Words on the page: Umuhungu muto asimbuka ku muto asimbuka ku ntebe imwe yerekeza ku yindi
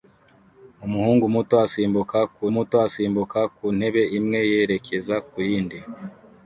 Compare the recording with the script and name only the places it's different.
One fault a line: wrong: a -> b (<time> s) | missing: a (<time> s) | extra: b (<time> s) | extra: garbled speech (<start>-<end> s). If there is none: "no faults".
no faults